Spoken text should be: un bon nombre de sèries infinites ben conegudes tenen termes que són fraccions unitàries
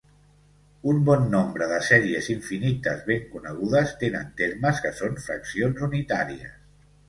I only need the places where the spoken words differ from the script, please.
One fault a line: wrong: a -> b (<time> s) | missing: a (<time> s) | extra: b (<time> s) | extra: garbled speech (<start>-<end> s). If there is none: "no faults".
no faults